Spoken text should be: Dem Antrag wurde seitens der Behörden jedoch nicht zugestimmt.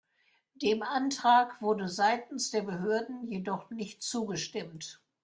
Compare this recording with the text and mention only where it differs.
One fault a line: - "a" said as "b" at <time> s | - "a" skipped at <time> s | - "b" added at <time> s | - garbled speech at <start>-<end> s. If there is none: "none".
none